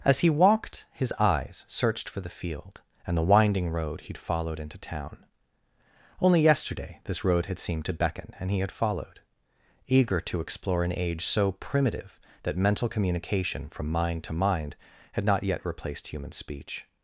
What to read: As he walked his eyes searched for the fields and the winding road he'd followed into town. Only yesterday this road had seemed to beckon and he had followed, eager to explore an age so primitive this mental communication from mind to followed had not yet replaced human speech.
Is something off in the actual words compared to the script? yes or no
yes